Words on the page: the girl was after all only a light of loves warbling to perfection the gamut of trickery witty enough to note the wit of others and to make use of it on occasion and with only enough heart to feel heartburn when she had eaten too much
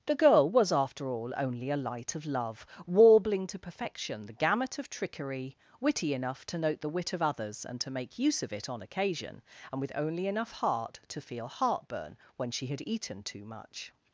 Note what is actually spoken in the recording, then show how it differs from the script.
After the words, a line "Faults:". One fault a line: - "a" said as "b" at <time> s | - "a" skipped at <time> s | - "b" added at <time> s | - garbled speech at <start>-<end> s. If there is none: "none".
the girl was after all only a light of love warbling to perfection the gamut of trickery witty enough to note the wit of others and to make use of it on occasion and with only enough heart to feel heartburn when she had eaten too much
Faults:
- "loves" said as "love" at 2.2 s